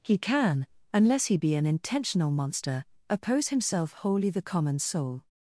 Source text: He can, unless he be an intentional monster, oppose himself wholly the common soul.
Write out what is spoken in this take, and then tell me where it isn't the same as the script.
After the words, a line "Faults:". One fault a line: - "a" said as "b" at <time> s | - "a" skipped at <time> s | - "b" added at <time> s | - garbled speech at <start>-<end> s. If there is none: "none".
He can, unless he be an intentional monster, oppose himself wholly the common soul.
Faults:
none